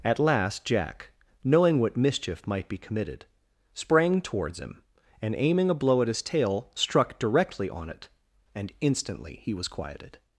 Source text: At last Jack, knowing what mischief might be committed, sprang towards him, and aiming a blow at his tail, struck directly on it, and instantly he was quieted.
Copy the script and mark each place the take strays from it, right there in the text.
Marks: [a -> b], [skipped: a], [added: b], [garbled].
At last Jack, knowing what mischief might be committed, sprang towards him, and aiming a blow at his tail, struck directly on it, and instantly he was quieted.